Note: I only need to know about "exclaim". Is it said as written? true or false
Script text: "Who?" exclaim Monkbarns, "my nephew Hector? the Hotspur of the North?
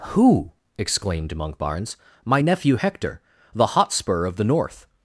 false